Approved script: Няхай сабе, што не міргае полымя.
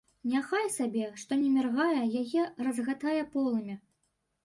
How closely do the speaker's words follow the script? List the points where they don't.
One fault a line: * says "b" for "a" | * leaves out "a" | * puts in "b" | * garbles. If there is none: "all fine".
* puts in "яе разгатае"